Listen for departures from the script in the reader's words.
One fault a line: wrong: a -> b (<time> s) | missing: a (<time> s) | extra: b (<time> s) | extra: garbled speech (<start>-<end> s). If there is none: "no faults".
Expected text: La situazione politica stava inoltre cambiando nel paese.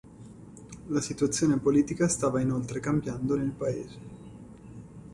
no faults